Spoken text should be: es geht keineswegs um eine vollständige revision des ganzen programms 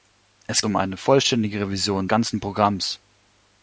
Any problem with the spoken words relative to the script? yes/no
yes